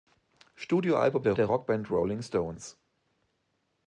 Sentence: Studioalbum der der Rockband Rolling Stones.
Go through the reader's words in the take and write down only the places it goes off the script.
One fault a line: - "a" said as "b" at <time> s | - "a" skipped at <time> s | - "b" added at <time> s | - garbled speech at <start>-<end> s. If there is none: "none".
none